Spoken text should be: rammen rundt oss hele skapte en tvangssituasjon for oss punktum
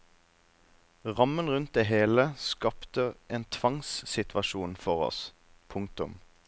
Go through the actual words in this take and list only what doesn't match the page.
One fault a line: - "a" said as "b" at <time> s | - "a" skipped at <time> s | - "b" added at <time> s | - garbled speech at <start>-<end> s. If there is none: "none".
- "oss" said as "det" at 1.7 s